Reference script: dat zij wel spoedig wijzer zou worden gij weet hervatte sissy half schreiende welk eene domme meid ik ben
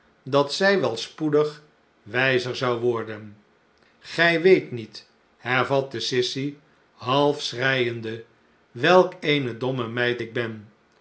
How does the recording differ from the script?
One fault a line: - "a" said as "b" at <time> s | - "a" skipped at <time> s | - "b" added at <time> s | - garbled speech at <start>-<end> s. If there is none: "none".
- "niet" added at 4.7 s